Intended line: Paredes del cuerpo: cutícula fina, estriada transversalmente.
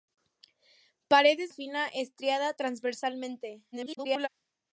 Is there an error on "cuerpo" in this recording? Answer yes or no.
yes